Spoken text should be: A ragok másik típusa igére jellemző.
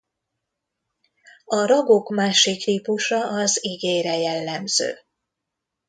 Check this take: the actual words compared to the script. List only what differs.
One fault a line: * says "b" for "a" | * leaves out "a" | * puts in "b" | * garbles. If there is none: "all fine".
* puts in "az"